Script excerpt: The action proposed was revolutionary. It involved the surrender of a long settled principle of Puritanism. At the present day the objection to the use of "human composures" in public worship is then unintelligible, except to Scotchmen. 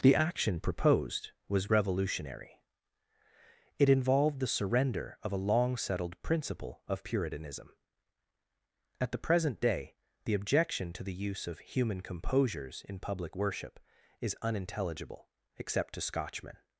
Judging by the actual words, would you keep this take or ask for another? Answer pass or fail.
fail